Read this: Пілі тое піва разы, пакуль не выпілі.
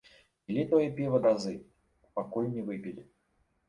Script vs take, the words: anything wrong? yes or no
no